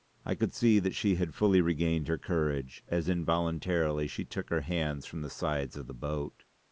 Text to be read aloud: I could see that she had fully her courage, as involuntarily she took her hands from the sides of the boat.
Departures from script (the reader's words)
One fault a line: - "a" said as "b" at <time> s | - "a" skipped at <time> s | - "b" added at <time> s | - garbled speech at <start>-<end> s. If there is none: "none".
- "regained" added at 1.6 s